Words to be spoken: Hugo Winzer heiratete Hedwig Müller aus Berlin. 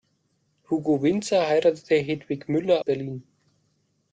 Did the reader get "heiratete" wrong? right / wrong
right